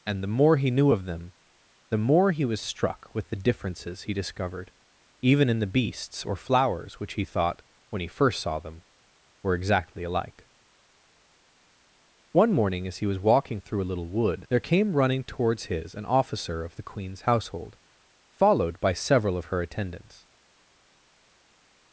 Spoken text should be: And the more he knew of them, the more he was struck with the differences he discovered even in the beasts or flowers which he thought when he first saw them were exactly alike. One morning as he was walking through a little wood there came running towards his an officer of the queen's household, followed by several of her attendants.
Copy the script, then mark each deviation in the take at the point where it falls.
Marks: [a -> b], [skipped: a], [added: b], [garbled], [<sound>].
And the more he knew of them, the more he was struck with the differences he discovered even in the beasts or flowers which he thought when he first saw them were exactly alike. One morning as he was walking through a little wood there came running towards his an officer of the queen's household, followed by several of her attendants.